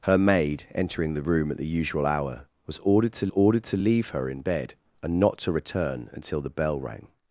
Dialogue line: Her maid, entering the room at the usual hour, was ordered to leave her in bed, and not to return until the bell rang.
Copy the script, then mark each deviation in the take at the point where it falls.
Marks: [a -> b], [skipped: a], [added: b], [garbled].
Her maid, entering the room at the usual hour, was ordered to [added: ordered to] leave her in bed, and not to return until the bell rang.